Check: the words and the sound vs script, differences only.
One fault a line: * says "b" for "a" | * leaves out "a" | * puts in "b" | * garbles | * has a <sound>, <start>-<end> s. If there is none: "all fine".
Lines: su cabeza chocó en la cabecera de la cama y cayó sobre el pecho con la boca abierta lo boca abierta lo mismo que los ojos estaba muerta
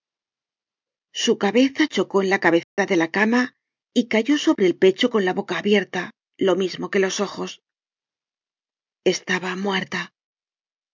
* has a dropout, 2.6-2.8 s
* leaves out "boca abierta lo"